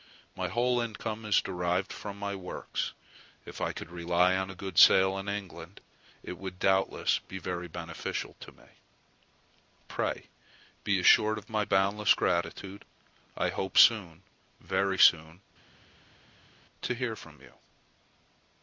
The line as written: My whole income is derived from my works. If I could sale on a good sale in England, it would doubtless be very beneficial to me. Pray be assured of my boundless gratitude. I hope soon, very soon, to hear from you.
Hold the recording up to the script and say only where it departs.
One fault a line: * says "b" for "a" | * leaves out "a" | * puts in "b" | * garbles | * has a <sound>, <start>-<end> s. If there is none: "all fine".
* says "rely" for "sale"